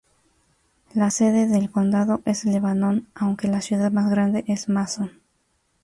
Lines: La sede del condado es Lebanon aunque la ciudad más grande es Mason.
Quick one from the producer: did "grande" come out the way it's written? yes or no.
yes